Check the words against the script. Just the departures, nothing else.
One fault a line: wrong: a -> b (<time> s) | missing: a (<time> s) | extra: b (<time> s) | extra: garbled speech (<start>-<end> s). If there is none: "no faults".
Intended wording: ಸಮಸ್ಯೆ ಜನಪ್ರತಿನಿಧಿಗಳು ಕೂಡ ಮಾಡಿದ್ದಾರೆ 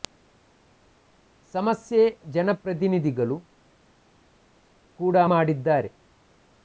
no faults